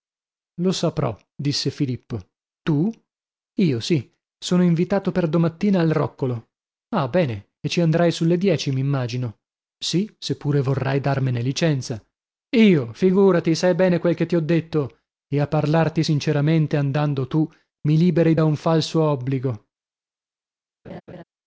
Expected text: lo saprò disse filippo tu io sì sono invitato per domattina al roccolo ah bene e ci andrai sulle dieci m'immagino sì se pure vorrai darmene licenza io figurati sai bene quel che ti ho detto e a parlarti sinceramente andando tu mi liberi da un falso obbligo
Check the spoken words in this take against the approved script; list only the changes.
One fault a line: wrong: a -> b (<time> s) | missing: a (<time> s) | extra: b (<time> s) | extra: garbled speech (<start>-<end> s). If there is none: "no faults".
no faults